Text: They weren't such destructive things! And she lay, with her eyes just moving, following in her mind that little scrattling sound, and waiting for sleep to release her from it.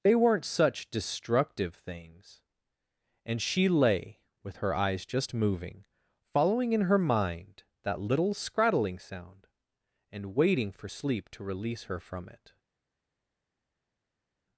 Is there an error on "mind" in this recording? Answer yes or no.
no